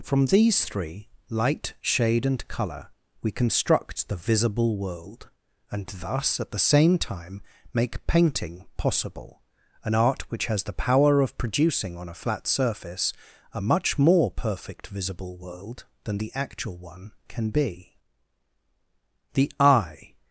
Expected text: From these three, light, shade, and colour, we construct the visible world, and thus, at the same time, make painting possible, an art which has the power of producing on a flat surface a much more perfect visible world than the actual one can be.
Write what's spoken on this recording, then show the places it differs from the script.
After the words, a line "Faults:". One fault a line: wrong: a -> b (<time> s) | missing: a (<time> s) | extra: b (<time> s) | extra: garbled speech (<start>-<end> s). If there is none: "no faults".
From these three, light, shade, and colour, we construct the visible world, and thus, at the same time, make painting possible, an art which has the power of producing on a flat surface a much more perfect visible world than the actual one can be. The eye
Faults:
extra: The eye (19.3 s)